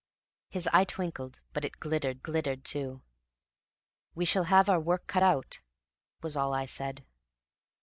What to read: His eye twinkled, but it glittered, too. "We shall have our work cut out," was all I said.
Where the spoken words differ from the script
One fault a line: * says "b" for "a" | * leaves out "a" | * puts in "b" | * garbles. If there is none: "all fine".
* puts in "glittered"